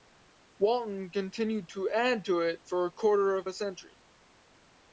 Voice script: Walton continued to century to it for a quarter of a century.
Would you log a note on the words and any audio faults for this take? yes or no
yes